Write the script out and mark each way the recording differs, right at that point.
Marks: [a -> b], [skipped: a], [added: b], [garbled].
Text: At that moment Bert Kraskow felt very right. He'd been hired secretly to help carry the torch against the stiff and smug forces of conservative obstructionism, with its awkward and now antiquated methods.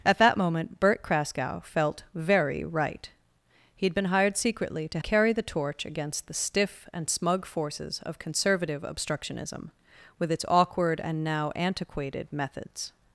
At that moment Bert Kraskow felt very right. He'd been hired secretly to [skipped: help] carry the torch against the stiff and smug forces of conservative obstructionism, with its awkward and now antiquated methods.